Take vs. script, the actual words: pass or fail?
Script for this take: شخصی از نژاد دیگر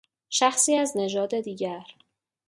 pass